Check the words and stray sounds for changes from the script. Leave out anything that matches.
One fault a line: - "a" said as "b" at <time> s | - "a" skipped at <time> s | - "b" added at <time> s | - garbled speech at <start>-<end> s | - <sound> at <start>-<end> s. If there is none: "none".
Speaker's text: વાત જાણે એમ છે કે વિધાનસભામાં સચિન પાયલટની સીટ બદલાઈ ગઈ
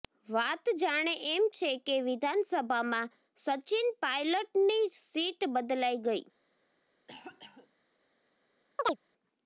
- cough at 7.1-7.7 s
- chirp at 8.8-9.0 s